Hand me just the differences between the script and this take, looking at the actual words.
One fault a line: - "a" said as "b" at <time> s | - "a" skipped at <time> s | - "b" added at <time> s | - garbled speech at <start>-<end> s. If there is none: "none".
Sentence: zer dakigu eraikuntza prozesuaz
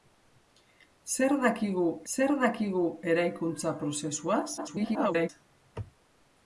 - "zer dakigu" added at 2.1 s
- garbled speech at 4.6-5.3 s